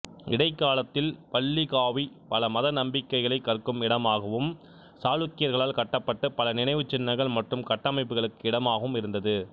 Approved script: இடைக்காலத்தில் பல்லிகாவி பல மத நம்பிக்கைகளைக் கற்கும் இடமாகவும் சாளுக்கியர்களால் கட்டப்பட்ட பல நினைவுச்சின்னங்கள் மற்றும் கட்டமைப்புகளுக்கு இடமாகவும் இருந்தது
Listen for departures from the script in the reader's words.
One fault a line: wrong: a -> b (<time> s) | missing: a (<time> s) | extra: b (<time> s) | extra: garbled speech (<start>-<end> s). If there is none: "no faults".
no faults